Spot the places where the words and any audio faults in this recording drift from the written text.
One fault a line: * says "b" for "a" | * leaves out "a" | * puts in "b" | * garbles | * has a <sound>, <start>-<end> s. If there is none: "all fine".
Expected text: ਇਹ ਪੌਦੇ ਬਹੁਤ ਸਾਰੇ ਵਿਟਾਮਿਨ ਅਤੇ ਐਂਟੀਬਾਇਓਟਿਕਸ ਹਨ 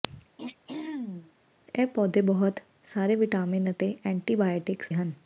* has a throat clearing, 0.4-1.3 s